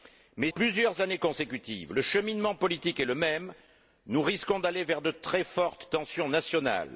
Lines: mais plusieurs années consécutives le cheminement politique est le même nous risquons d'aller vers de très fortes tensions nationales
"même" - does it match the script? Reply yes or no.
yes